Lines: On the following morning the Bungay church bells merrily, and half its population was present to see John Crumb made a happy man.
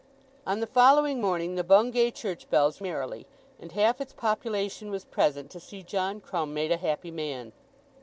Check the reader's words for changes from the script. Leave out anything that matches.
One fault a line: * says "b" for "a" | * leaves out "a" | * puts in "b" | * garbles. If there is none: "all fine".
all fine